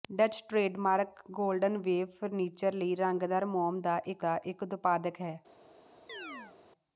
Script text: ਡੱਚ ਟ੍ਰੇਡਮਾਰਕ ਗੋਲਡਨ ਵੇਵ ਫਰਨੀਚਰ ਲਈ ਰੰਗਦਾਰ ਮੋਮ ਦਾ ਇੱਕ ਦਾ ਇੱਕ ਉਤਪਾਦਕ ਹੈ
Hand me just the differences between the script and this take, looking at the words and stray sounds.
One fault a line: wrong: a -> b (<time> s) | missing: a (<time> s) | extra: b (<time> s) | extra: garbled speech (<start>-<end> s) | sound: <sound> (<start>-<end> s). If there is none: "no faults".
sound: chirp (6.1-6.6 s)